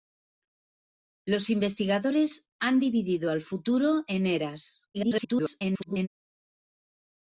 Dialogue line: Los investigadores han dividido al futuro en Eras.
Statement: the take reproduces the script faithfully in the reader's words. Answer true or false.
false